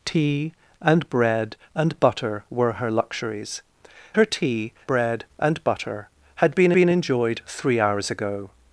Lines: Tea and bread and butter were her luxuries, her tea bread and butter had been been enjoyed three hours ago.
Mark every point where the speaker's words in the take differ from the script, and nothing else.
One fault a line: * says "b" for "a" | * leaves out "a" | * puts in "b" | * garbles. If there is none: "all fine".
all fine